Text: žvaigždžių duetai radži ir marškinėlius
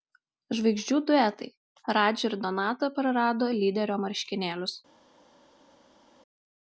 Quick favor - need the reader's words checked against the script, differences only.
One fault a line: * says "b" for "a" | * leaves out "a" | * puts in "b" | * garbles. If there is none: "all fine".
* puts in "donata prarado lyderio"